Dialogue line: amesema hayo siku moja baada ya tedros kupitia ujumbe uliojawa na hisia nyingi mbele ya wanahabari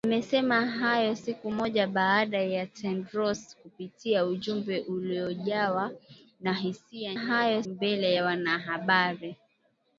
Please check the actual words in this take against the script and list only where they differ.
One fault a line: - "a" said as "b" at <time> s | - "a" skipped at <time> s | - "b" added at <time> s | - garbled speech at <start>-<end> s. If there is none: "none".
- "nyingi" said as "hayo" at 7.1 s